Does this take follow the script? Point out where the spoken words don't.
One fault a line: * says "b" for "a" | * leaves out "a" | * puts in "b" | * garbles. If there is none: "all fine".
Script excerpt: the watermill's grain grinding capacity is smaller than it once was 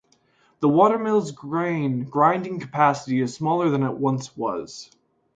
all fine